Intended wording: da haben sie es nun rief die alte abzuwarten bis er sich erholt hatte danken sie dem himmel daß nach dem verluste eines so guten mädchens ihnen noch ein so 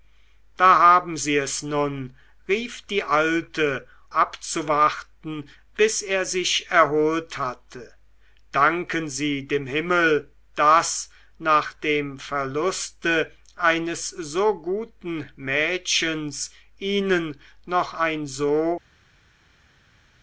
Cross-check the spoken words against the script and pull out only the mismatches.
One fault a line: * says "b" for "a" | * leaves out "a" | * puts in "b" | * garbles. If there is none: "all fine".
all fine